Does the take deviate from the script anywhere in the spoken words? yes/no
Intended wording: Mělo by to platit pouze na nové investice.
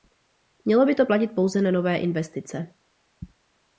no